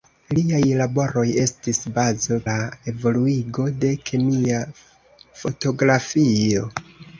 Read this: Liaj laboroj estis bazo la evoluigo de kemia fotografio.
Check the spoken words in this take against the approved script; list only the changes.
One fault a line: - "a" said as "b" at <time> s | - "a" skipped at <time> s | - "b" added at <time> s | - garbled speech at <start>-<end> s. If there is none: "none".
none